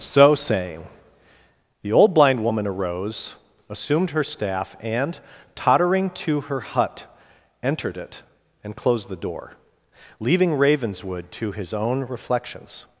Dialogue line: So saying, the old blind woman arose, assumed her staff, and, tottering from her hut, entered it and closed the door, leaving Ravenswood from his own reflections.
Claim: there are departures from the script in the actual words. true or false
true